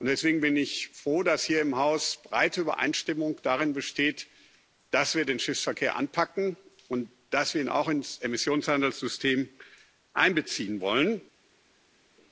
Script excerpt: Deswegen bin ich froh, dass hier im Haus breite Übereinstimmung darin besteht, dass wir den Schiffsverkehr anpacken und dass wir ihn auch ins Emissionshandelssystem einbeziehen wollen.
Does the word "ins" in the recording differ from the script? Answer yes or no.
no